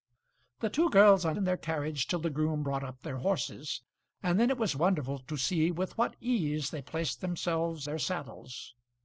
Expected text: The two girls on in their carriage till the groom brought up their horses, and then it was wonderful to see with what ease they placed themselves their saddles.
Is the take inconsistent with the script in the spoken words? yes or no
no